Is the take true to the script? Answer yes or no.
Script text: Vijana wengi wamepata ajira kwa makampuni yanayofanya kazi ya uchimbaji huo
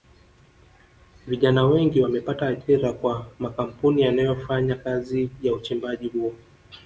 yes